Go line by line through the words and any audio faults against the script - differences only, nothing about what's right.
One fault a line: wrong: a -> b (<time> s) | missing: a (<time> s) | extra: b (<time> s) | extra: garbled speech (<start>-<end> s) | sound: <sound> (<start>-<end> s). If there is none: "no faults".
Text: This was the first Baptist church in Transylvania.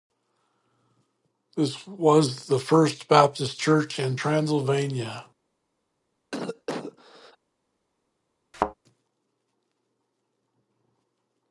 sound: cough (6.3-7.4 s)
sound: thud (8.5-8.7 s)